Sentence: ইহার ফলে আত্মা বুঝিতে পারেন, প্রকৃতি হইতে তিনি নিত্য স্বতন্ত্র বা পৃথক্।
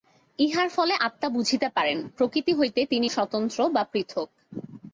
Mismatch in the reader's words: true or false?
true